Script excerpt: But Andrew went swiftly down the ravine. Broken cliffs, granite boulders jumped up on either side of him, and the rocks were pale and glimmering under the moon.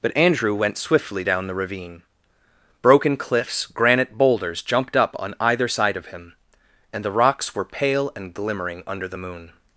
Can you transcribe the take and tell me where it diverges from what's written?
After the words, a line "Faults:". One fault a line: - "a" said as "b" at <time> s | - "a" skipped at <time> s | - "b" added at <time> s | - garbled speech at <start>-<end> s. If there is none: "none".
But Andrew went swiftly down the ravine. Broken cliffs, granite boulders jumped up on either side of him, and the rocks were pale and glimmering under the moon.
Faults:
none